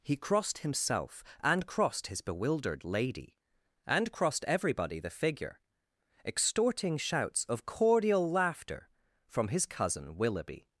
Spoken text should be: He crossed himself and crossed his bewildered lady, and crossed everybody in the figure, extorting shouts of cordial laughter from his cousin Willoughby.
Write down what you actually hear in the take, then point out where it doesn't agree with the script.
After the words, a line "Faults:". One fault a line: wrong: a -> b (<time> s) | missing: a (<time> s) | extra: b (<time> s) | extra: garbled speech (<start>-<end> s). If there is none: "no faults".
He crossed himself and crossed his bewildered lady, and crossed everybody the figure, extorting shouts of cordial laughter from his cousin Willoughby.
Faults:
missing: in (5.0 s)